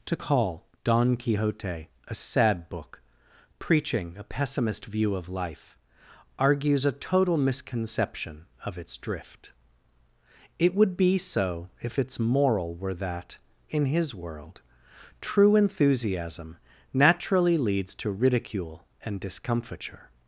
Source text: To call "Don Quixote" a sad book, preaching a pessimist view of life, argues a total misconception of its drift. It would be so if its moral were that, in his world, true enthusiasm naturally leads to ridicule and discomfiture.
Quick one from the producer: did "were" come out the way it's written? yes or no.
yes